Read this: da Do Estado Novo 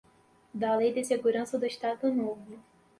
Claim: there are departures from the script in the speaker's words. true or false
true